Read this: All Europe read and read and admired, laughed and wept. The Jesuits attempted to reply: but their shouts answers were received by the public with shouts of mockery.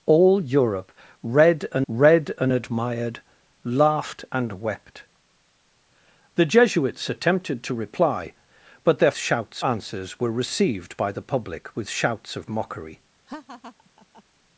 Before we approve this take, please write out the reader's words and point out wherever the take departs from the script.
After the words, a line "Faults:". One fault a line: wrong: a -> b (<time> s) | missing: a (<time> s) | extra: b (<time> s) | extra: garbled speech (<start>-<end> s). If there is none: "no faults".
All Europe read and read and admired, laughed and wept. The Jesuits attempted to reply: but their shouts answers were received by the public with shouts of mockery.
Faults:
no faults